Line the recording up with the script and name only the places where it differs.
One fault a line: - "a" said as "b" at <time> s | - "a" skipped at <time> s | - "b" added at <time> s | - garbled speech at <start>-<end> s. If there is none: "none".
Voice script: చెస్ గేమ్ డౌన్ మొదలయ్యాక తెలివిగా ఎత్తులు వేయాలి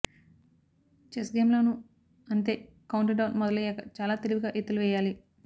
- "లోనూ అంతే కౌంట్" added at 1.5 s
- "చాలా" added at 4.0 s